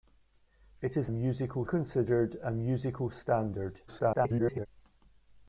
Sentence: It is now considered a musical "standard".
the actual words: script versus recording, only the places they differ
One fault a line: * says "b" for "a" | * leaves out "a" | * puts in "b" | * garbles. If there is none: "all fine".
* says "musical" for "now"
* garbles